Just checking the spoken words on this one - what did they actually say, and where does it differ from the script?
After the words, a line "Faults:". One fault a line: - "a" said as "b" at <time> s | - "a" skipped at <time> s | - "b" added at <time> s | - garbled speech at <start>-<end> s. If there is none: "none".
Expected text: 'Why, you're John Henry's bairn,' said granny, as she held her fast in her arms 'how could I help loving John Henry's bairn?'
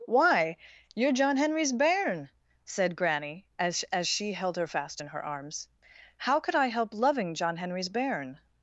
'Why, you're John Henry's bairn,' said granny, as as she held her fast in her arms 'how could I help loving John Henry's bairn?'
Faults:
- "as" added at 3.9 s